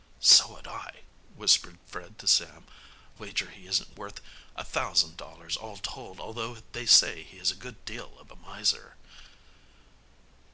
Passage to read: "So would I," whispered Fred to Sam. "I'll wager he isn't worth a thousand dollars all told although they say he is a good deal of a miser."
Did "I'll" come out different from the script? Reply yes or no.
yes